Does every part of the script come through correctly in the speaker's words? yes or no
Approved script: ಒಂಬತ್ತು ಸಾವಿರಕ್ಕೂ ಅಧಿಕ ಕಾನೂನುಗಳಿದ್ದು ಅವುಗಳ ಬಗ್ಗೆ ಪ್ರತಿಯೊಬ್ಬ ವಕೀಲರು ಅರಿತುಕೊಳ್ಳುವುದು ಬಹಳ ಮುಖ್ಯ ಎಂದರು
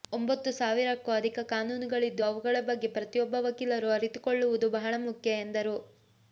yes